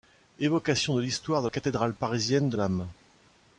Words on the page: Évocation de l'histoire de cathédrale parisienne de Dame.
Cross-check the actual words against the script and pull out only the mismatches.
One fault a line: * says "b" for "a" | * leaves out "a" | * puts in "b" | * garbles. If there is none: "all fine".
all fine